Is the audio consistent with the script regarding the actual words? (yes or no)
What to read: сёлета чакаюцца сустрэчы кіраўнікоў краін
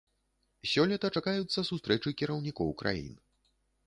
yes